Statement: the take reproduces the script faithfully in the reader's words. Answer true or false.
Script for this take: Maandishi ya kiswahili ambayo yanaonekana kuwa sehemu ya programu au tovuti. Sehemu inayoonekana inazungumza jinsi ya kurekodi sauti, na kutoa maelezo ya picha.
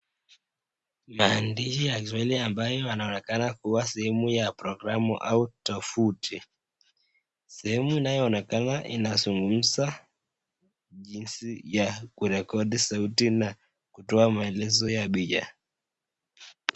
true